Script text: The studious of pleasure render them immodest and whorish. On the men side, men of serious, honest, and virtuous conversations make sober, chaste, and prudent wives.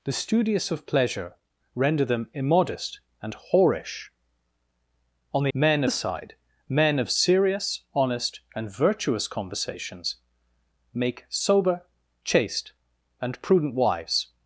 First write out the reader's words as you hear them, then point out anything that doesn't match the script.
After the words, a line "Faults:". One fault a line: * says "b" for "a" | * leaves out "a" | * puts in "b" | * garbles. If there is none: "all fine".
The studious of pleasure render them immodest and whorish. On the men side, men of serious, honest, and virtuous conversations make sober, chaste, and prudent wives.
Faults:
all fine